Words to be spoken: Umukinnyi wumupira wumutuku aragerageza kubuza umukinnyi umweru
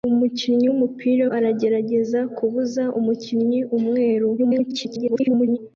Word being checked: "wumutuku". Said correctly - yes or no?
no